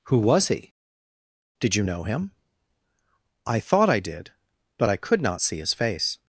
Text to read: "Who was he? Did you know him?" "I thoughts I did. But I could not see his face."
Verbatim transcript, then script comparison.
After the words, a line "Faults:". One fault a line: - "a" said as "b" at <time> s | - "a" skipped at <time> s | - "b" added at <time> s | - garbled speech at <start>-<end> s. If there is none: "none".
"Who was he? Did you know him?" "I thought I did. But I could not see his face."
Faults:
- "thoughts" said as "thought" at 3.6 s